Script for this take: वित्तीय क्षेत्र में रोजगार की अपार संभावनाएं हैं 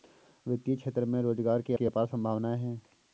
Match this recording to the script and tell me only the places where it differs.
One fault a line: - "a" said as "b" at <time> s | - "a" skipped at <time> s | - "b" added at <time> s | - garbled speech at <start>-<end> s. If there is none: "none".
- "की" added at 1.7 s